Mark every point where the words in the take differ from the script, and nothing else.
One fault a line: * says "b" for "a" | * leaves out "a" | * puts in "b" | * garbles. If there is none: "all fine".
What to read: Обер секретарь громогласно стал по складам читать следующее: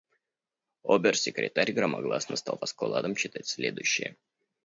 all fine